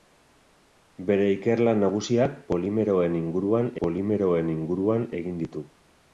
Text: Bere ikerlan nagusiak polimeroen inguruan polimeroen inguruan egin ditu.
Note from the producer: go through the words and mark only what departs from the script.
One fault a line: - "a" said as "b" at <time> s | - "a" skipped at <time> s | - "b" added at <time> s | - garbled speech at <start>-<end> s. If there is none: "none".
none